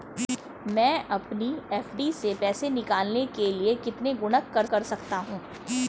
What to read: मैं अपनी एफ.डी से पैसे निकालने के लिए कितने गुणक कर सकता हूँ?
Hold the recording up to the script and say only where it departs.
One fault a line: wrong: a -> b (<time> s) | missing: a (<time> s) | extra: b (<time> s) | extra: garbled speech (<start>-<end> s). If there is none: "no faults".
extra: कर (4.7 s)